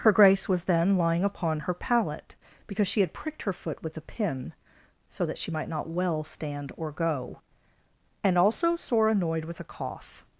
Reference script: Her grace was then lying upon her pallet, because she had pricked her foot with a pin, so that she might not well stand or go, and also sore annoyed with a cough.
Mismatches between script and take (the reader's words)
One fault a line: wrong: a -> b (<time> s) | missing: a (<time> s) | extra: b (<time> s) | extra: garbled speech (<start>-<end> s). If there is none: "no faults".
no faults